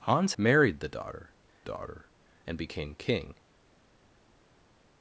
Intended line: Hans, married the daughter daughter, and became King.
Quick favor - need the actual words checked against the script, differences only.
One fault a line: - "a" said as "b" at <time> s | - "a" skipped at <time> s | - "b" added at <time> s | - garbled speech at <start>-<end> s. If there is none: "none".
none